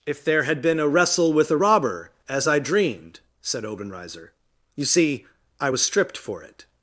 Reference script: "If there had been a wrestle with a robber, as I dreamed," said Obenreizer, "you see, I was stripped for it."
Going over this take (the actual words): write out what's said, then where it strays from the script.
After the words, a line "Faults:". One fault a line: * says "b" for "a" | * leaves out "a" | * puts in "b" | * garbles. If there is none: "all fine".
"If there had been a wrestle with a robber, as I dreamed," said Obenreizer, "you see, I was stripped for it."
Faults:
all fine